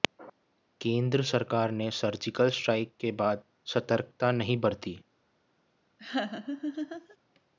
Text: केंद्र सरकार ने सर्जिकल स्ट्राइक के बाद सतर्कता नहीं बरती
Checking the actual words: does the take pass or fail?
pass